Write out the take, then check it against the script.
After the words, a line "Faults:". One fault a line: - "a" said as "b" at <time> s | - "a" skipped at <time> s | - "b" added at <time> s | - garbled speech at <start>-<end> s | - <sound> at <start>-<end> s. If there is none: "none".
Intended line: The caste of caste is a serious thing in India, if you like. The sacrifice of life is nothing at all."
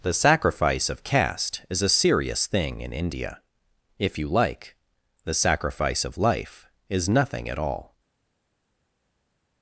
The sacrifice of caste is a serious thing in India, if you like. The sacrifice of life is nothing at all."
Faults:
- "caste" said as "sacrifice" at 0.1 s